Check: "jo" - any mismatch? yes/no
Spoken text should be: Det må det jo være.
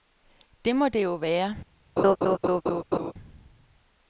no